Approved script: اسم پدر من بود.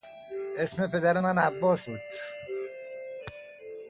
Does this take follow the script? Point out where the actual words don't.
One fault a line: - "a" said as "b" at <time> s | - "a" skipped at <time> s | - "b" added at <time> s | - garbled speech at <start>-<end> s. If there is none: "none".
- "عباس" added at 1.4 s